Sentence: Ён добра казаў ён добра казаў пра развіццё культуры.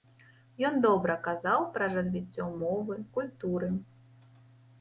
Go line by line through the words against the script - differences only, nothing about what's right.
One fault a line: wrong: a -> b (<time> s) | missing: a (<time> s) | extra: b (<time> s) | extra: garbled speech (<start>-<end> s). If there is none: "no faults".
missing: ён добра казаў (1.7 s)
extra: мовы (2.6 s)